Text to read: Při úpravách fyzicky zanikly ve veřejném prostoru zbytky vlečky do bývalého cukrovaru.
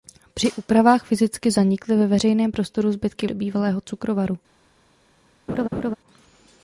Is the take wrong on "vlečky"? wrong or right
wrong